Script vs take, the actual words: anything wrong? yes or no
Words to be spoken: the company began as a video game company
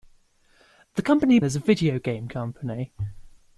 yes